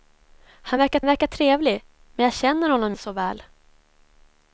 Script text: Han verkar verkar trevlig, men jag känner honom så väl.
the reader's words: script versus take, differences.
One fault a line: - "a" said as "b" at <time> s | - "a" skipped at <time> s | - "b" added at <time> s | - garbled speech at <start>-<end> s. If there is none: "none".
none